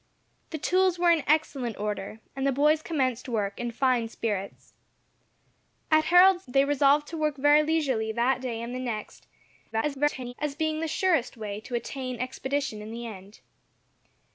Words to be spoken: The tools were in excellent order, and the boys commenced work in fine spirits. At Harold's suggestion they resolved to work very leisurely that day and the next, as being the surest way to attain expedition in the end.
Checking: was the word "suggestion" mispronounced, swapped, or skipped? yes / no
yes